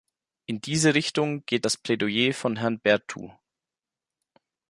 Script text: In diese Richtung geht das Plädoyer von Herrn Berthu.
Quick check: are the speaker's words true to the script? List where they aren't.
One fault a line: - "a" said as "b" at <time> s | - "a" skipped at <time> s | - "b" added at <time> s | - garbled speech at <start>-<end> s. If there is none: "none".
none